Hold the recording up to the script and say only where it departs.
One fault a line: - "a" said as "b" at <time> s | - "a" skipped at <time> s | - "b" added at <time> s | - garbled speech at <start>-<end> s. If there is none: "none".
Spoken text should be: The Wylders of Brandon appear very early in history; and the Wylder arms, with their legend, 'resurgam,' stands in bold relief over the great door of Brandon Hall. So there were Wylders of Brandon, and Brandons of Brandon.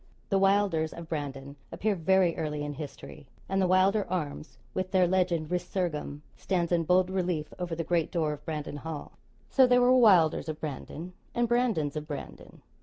none